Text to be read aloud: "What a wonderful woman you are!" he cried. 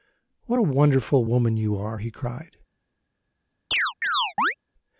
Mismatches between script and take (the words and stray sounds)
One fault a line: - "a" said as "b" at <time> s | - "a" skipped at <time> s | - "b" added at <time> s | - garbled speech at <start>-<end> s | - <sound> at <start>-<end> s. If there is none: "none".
- chirp at 3.7-4.5 s